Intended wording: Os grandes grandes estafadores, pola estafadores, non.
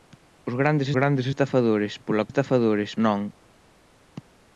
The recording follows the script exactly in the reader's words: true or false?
true